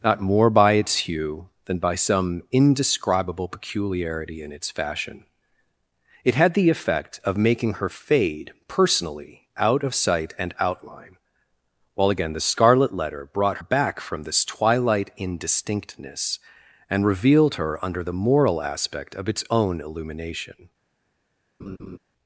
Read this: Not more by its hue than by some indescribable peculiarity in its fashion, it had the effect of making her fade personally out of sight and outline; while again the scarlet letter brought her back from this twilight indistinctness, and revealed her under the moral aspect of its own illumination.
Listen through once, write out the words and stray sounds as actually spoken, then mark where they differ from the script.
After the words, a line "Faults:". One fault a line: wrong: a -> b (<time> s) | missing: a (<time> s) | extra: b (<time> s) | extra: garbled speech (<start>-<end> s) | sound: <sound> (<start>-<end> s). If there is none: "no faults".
Not more by its hue than by some indescribable peculiarity in its fashion, it had the effect of making her fade personally out of sight and outline; while again the scarlet letter brought back from this twilight indistinctness, and revealed her under the moral aspect of its own illumination.
Faults:
missing: her (13.6 s)
sound: laugh (21.6-22.0 s)